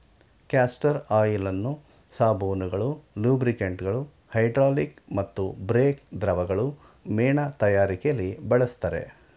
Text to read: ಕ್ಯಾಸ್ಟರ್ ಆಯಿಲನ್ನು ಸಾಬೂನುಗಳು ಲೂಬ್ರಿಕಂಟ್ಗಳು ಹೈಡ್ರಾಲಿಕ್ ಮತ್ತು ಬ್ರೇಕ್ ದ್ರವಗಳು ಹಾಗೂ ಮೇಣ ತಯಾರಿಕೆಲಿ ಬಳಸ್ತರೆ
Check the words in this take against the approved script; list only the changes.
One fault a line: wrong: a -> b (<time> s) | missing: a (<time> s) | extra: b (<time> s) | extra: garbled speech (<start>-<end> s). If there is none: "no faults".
missing: ಹಾಗೂ (6.7 s)